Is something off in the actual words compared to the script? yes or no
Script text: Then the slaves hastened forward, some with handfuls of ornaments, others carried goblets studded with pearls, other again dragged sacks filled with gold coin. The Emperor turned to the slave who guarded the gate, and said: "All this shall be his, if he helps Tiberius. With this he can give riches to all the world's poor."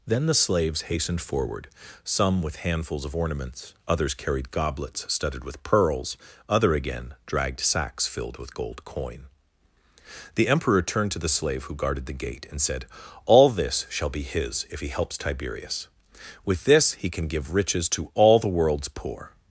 no